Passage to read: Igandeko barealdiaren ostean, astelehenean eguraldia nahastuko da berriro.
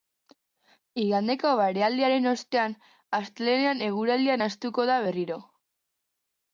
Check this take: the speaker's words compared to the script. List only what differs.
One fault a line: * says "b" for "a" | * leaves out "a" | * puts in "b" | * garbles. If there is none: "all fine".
all fine